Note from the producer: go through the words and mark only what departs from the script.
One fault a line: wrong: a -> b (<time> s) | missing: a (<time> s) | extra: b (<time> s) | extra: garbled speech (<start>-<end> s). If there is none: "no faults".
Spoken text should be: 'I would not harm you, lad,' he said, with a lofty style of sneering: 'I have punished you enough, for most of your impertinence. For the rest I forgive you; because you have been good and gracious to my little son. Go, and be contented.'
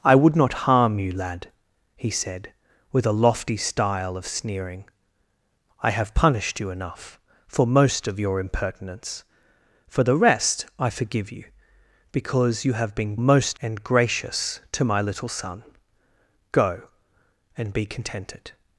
wrong: good -> most (13.2 s)